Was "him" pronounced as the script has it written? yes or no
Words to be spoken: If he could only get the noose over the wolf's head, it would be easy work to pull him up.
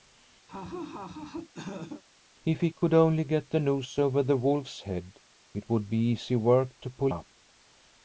no